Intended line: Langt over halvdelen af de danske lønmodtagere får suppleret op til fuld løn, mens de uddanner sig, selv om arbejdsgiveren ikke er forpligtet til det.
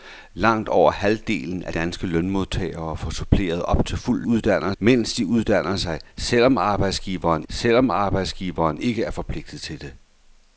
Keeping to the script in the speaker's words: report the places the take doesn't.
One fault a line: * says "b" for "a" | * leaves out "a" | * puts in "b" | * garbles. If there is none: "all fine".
* leaves out "de"
* says "uddanner" for "løn"
* puts in "selv om arbejdsgiveren"